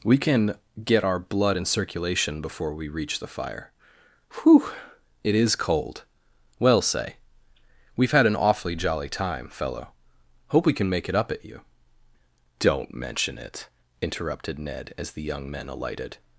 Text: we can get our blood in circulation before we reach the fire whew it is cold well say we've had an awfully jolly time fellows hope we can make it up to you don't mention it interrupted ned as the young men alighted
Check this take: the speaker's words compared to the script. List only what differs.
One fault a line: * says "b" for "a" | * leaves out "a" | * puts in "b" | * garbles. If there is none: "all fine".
* says "fellow" for "fellows"
* says "at" for "to"